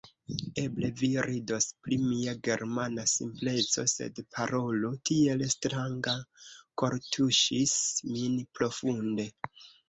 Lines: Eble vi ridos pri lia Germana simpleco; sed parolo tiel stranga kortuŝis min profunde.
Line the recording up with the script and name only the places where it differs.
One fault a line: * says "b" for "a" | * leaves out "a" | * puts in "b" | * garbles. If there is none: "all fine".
* says "mia" for "lia"